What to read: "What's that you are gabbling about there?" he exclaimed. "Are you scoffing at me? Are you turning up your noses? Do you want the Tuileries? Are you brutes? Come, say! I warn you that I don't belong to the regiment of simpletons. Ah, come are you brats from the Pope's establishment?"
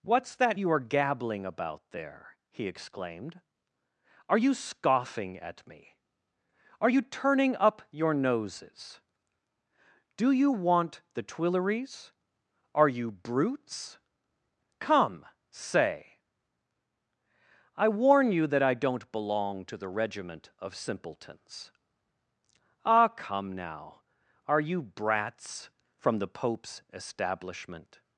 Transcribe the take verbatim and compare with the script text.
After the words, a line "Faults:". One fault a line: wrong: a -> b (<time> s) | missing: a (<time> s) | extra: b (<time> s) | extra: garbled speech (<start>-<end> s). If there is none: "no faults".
"What's that you are gabbling about there?" he exclaimed. "Are you scoffing at me? Are you turning up your noses? Do you want the Tuileries? Are you brutes? Come, say! I warn you that I don't belong to the regiment of simpletons. Ah, come now, are you brats from the Pope's establishment?"
Faults:
extra: now (23.5 s)